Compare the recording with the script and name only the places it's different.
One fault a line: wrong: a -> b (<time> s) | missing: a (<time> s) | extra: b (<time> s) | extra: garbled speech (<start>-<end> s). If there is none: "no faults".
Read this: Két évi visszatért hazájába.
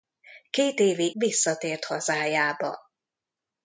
no faults